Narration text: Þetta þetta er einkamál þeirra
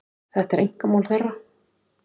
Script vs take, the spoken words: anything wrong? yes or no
yes